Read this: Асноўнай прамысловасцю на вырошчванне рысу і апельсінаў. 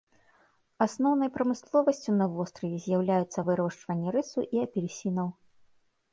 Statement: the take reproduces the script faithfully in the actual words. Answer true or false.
false